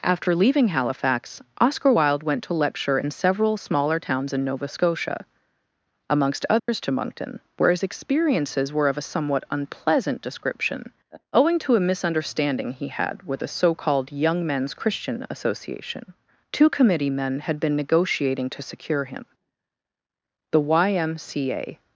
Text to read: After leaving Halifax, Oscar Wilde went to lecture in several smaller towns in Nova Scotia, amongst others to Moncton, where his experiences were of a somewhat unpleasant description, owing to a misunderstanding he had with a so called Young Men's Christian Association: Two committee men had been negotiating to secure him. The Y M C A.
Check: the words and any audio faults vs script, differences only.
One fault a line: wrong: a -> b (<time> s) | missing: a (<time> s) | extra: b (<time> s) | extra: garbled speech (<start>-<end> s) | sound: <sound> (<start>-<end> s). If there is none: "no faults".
sound: dropout (6.6-6.7 s)